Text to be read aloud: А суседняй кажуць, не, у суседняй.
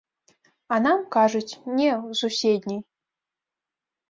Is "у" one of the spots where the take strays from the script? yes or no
no